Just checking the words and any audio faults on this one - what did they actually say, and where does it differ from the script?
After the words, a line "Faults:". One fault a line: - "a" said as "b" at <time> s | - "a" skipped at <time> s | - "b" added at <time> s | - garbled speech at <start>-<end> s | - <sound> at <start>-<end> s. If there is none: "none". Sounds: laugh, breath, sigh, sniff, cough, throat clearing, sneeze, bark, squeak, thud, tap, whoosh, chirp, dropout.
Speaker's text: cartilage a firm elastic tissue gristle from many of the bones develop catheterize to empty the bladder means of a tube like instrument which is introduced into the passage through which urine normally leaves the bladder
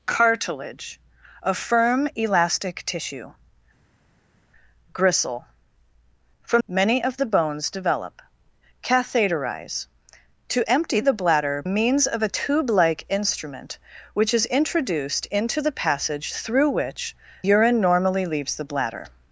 cartilage a firm elastic tissue gristle from many of the bones develop catheterize to empty the bladder means of a tube like instrument which is introduced into the passage through which urine normally leaves the bladder
Faults:
none